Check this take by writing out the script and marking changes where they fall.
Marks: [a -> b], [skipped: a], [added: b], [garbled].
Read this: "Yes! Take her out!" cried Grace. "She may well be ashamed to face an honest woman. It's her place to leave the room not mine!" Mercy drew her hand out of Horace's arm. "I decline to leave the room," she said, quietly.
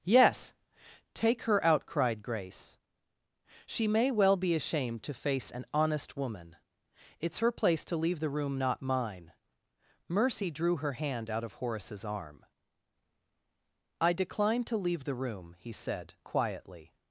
"Yes! Take her out!" cried Grace. "She may well be ashamed to face an honest woman. It's her place to leave the room not mine!" Mercy drew her hand out of Horace's arm. "I decline to leave the room," [she -> he] said, quietly.